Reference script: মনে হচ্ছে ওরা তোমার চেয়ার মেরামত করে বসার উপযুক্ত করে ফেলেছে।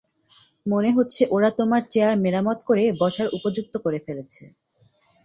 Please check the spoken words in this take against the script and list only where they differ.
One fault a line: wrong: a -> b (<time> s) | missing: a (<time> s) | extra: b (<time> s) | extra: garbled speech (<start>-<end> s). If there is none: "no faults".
no faults